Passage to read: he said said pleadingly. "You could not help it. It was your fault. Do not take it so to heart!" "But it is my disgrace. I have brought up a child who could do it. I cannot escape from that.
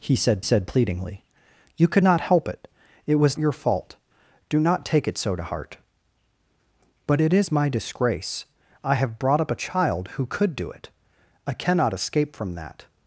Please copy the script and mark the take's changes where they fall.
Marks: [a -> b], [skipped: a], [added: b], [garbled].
he said said pleadingly. "You could not help it. It was your fault. Do not take it so to heart!" "But it is my disgrace. I have brought up a child who could do it. I cannot escape from that.